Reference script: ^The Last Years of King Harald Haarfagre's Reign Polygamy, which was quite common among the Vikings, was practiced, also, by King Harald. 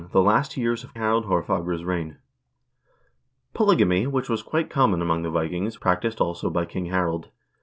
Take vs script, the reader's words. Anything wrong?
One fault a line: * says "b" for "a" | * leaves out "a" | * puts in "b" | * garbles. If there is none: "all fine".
* leaves out "King"
* leaves out "was"